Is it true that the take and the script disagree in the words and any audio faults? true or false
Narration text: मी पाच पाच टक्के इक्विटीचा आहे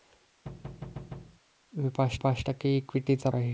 true